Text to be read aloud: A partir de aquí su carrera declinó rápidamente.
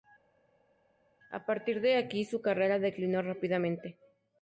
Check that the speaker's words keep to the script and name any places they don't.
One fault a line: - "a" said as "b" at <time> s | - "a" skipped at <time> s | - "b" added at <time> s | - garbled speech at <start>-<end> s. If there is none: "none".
none